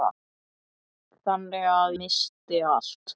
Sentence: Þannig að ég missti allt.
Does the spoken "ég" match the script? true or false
false